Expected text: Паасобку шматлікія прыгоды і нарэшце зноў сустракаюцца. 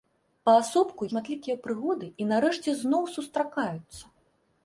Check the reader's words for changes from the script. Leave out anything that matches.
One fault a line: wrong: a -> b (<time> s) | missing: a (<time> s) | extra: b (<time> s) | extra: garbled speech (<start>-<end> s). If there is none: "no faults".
no faults